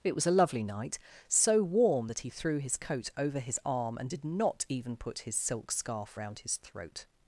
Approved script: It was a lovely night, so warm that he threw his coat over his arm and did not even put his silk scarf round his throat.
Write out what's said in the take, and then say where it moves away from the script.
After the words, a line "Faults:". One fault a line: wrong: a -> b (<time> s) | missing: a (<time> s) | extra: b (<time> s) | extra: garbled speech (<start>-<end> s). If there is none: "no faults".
It was a lovely night, so warm that he threw his coat over his arm and did not even put his silk scarf round his throat.
Faults:
no faults